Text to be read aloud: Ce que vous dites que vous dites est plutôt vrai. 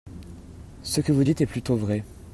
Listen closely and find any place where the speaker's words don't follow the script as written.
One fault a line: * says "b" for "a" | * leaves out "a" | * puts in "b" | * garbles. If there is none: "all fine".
* leaves out "que vous dites"